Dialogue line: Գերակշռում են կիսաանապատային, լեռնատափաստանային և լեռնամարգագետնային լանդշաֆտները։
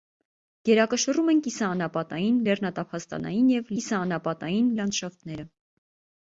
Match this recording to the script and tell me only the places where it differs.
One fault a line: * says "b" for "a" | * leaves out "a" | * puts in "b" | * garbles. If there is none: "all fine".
* says "կիսաանապատային" for "լեռնամարգագետնային"